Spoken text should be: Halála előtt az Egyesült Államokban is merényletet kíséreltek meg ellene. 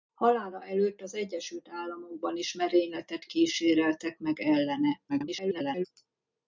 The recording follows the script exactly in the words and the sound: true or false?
false